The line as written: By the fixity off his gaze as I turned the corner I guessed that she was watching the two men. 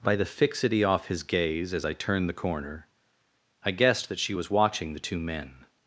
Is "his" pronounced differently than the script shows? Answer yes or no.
no